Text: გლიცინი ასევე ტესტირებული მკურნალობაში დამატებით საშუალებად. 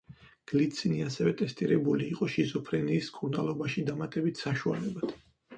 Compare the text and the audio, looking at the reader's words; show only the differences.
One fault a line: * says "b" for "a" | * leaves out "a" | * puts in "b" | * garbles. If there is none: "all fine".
* puts in "იყო შიზოფრენიის"